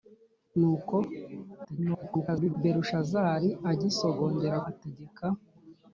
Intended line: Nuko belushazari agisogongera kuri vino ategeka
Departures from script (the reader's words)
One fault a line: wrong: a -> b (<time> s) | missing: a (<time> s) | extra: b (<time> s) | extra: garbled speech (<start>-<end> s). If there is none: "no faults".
extra: garbled speech (1.6-2.5 s)
missing: kuri vino (4.6 s)